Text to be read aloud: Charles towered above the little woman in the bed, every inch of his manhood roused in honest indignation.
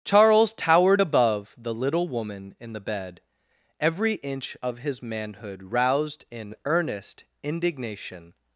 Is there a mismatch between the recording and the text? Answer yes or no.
yes